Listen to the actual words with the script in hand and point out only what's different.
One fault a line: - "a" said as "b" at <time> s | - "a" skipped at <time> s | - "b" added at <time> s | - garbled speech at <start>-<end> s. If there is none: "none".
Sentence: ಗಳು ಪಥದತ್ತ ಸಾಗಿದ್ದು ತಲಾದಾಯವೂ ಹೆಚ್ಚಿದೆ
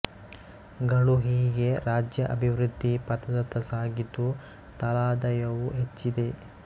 - "ಹೀಗೆ ರಾಜ್ಯ ಅಭಿವೃದ್ಧಿ" added at 1.2 s